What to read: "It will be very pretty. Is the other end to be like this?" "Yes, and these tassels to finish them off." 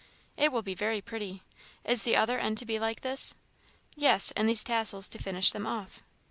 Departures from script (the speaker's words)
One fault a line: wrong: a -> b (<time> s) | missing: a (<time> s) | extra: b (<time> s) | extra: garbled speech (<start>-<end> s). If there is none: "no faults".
no faults